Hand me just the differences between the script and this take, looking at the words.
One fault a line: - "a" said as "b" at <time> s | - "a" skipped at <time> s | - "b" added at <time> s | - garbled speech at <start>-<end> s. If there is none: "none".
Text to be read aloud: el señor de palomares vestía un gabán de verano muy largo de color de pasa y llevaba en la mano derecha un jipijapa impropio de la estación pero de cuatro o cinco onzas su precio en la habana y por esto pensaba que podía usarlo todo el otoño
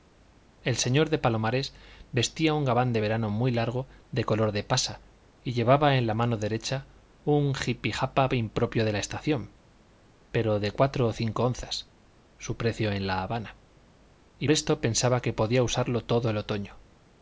- "por" skipped at 14.5 s